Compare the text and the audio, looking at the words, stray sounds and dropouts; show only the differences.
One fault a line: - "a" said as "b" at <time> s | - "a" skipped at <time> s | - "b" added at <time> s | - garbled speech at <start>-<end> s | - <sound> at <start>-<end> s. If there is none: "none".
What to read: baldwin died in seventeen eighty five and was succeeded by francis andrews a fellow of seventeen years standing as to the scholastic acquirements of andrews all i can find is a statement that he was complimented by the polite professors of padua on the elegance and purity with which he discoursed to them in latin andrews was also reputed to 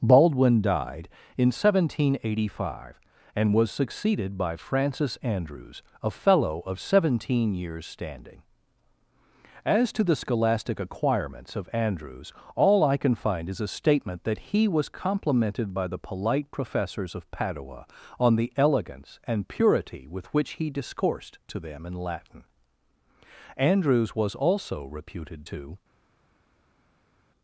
none